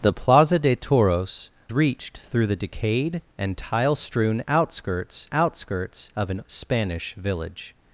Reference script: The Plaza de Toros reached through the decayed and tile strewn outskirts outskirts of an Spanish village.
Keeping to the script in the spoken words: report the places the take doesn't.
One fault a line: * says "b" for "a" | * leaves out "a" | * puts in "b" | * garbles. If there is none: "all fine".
all fine